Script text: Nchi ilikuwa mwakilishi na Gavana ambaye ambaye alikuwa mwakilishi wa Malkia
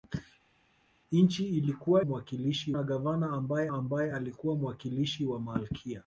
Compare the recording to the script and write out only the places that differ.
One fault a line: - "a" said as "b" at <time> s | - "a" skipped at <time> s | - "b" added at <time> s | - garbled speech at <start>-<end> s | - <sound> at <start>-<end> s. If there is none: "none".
none